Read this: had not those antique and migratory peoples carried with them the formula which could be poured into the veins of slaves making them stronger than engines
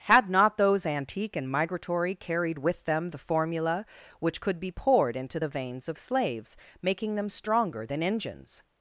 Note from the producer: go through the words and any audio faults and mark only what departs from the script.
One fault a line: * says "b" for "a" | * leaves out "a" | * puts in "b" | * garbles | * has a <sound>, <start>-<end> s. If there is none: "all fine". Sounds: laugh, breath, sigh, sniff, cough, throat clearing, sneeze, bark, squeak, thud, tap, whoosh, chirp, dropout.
* leaves out "peoples"